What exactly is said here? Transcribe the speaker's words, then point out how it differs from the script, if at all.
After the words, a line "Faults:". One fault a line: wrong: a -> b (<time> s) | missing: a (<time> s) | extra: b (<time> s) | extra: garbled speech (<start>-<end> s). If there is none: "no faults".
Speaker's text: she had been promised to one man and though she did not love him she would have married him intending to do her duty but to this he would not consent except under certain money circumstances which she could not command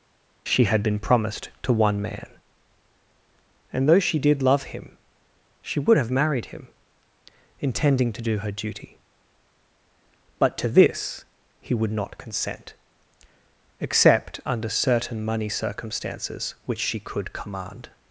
she had been promised to one man and though she did love him she would have married him intending to do her duty but to this he would not consent except under certain money circumstances which she could command
Faults:
missing: not (4.4 s)
missing: not (17.3 s)